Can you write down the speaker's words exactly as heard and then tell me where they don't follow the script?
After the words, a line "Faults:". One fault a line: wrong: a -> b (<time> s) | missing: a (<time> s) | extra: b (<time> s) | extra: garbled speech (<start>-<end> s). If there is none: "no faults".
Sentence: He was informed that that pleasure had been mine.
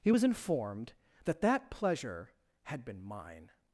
He was informed that that pleasure had been mine.
Faults:
no faults